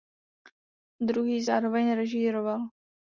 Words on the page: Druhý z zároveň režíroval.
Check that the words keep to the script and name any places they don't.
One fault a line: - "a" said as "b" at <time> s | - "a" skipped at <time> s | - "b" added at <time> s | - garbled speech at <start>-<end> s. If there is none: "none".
none